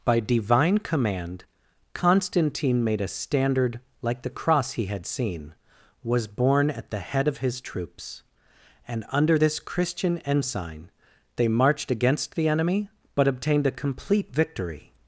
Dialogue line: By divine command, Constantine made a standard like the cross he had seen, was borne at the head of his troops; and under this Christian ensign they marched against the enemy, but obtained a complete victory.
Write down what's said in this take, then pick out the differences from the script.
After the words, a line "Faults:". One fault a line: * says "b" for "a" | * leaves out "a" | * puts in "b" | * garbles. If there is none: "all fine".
By divine command, Constantine made a standard like the cross he had seen, was borne at the head of his troops; and under this Christian ensign they marched against the enemy, but obtained a complete victory.
Faults:
all fine